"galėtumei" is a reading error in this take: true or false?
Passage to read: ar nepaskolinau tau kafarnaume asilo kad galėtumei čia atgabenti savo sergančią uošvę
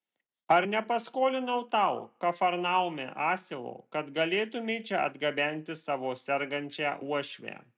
false